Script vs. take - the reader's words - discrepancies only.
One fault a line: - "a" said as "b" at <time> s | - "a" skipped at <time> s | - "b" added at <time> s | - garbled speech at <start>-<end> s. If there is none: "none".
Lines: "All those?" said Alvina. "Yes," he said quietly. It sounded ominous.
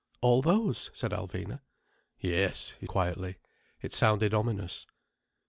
- "said" skipped at 2.9 s